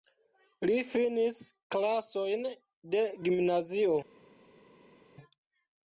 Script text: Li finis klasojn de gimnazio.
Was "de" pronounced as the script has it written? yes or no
yes